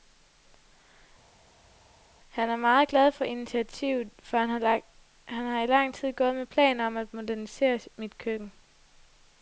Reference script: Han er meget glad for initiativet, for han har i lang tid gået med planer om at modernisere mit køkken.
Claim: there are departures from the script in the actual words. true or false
false